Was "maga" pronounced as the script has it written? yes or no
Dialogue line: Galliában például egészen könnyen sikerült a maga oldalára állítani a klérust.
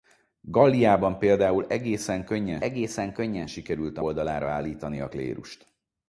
no